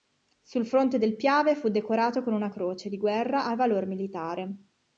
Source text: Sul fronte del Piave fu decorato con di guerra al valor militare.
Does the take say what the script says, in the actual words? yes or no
no